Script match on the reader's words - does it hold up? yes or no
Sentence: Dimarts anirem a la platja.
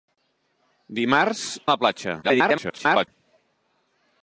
no